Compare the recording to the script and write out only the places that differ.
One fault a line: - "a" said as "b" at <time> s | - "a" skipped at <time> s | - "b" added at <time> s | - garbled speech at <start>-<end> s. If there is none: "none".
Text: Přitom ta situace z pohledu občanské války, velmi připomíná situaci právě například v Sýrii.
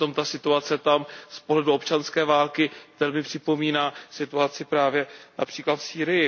- "tam" added at 0.8 s